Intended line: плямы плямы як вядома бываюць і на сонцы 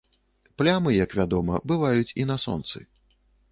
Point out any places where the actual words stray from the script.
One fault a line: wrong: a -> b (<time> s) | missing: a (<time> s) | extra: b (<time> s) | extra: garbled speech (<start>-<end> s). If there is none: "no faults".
missing: плямы (0.9 s)